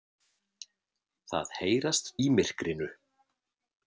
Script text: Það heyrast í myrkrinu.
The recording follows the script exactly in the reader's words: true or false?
true